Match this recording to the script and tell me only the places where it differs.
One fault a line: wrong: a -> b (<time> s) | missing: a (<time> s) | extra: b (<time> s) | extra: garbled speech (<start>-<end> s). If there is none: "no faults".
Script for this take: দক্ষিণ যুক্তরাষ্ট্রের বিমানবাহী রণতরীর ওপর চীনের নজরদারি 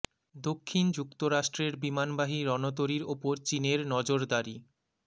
no faults